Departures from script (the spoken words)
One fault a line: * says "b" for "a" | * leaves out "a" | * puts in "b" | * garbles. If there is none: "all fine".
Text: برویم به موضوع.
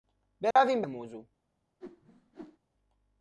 all fine